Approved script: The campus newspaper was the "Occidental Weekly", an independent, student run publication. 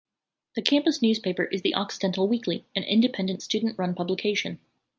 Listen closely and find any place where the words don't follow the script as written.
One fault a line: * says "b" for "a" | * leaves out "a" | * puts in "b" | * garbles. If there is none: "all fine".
* says "is" for "was"